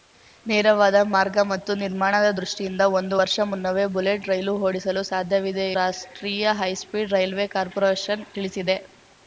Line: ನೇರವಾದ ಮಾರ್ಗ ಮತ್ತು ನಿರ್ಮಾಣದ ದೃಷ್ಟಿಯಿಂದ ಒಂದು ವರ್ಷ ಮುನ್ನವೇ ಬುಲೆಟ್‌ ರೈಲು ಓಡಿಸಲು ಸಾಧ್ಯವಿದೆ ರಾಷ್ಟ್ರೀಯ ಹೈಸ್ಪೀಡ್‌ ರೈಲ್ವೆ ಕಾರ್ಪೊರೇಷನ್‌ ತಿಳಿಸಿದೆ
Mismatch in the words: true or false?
false